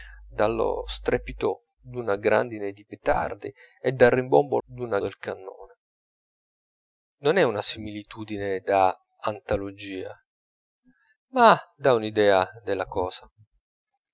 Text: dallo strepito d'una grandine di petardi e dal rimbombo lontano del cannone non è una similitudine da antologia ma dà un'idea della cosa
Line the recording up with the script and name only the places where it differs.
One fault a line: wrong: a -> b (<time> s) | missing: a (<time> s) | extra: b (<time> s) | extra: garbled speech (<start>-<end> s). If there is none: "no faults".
wrong: lontano -> d'una (4.6 s)